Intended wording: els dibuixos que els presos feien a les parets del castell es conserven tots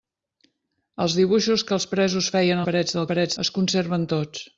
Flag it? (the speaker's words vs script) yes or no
yes